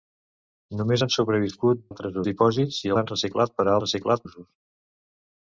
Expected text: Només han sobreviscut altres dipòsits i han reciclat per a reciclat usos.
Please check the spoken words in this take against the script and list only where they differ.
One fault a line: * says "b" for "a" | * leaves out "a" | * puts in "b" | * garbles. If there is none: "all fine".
all fine